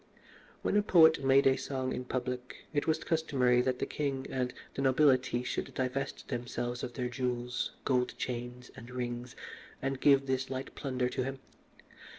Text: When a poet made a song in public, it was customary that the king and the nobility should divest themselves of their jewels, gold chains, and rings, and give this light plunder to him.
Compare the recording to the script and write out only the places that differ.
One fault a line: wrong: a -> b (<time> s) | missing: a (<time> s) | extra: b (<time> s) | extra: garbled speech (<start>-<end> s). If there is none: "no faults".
no faults